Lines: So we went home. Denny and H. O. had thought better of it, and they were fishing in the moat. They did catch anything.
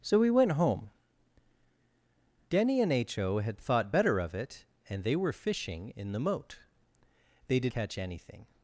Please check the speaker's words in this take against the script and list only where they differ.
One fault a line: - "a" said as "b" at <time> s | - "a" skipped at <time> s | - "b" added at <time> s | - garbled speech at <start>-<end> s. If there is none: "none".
none